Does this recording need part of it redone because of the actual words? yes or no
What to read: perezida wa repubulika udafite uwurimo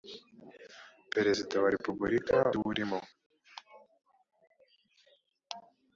yes